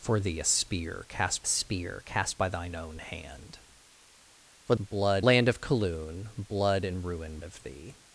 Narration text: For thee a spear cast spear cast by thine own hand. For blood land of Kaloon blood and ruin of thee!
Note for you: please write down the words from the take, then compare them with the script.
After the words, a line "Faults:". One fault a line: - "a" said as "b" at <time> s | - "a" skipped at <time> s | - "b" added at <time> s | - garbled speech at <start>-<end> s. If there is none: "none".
For thee a spear cast spear cast by thine own hand. For blood land of Kaloon blood and ruin of thee!
Faults:
none